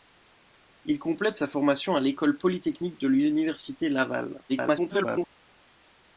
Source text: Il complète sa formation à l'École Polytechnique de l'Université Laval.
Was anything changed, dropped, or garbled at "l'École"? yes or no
no